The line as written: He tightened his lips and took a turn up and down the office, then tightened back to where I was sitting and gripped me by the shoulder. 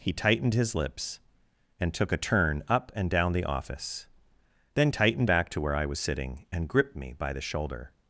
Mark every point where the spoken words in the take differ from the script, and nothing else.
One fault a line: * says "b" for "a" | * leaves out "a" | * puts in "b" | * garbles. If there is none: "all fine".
all fine